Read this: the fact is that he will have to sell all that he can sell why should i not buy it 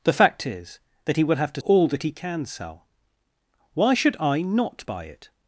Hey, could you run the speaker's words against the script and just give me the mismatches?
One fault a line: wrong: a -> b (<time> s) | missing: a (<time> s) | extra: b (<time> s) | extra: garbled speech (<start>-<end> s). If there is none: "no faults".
missing: sell (1.6 s)